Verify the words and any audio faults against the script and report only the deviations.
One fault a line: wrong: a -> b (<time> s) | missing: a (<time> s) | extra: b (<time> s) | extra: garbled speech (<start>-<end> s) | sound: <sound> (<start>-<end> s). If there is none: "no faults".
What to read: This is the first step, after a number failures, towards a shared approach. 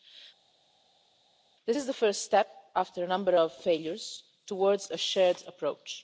extra: of (3.3 s)